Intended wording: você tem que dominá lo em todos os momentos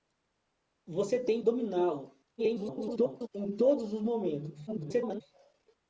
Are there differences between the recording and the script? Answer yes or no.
yes